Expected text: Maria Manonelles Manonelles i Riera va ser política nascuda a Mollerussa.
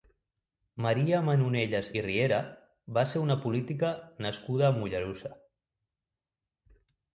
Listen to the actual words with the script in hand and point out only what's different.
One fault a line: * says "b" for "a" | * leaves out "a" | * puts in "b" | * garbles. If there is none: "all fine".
* leaves out "Manonelles"
* puts in "una"